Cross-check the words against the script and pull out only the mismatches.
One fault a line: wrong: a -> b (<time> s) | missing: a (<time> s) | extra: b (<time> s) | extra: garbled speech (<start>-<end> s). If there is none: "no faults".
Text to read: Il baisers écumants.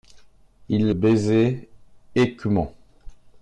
no faults